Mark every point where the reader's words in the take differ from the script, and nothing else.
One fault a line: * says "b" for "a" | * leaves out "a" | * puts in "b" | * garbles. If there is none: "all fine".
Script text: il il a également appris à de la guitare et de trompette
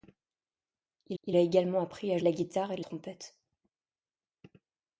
all fine